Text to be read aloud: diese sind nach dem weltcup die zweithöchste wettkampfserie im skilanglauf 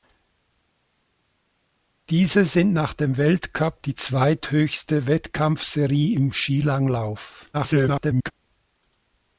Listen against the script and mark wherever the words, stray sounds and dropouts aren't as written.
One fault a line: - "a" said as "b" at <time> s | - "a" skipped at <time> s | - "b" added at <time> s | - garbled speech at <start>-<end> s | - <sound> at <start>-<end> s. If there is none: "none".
- garbled speech at 7.5-8.3 s